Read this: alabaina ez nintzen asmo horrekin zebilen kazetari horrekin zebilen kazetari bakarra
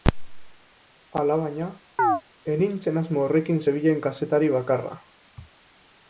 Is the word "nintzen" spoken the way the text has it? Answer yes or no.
yes